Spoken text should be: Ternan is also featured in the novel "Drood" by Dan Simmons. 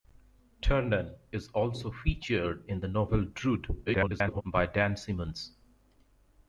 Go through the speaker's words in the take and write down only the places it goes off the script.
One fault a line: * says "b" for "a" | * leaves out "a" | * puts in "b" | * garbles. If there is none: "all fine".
* garbles